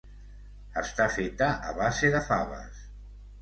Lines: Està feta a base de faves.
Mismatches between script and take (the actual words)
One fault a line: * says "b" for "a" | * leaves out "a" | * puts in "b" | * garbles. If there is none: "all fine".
all fine